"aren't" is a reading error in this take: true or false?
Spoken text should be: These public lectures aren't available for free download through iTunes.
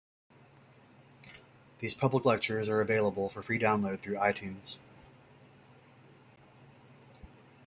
true